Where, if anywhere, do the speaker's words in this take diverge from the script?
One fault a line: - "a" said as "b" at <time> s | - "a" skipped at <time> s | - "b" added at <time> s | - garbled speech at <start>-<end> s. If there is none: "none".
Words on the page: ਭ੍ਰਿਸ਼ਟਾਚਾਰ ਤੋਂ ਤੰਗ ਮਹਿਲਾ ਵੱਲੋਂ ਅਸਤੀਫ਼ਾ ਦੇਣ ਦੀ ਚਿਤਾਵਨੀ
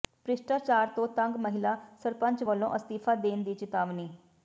- "ਸਰਪੰਚ" added at 2.0 s